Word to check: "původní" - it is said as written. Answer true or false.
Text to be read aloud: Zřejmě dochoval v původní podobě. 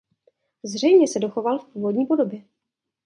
true